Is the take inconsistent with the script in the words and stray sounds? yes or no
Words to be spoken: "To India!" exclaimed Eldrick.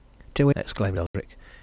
yes